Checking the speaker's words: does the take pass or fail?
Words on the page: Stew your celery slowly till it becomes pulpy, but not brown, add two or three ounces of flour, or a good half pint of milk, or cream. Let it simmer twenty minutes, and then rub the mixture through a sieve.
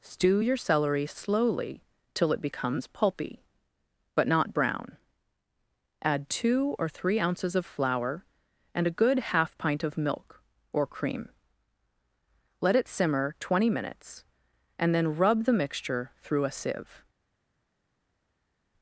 fail